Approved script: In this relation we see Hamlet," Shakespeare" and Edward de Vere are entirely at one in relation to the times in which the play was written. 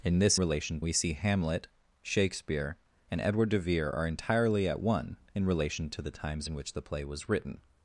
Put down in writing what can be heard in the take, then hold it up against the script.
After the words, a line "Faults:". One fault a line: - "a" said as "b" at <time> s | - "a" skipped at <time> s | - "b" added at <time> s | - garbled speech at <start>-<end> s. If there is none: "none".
In this relation we see Hamlet," Shakespeare" and Edward de Vere are entirely at one in relation to the times in which the play was written.
Faults:
none